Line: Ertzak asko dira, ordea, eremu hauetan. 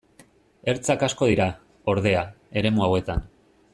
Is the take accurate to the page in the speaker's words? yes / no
yes